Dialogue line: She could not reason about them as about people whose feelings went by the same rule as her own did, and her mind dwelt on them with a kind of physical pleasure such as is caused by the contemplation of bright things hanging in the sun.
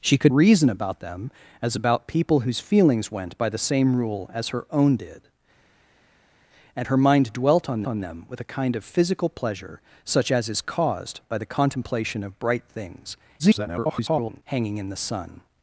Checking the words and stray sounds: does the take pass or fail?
fail